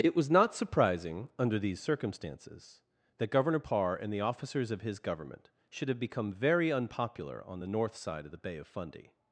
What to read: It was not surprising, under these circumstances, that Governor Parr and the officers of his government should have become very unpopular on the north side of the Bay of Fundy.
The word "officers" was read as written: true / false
true